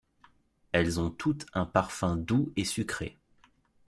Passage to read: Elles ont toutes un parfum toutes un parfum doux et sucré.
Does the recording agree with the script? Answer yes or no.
no